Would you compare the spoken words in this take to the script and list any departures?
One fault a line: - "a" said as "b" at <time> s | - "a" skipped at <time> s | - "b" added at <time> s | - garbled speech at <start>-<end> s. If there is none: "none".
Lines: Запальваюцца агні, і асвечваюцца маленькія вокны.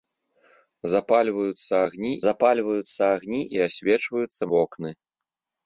- "запальваюцца агні" added at 2.3 s
- "маленькія" skipped at 4.4 s